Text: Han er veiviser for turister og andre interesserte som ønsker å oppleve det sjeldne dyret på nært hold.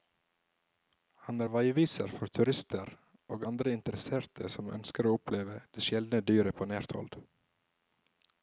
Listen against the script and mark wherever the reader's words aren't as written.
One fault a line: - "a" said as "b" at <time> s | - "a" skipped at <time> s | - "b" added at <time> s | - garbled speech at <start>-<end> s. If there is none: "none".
none